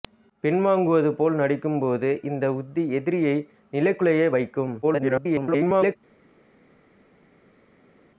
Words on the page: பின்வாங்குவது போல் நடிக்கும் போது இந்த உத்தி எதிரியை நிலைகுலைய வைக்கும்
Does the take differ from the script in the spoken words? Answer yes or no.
yes